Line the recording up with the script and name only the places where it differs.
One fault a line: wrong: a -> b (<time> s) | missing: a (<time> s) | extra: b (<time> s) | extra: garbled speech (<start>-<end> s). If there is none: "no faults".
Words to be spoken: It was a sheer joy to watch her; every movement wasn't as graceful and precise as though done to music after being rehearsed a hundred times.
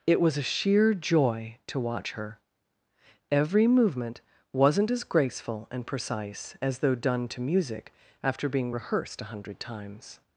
no faults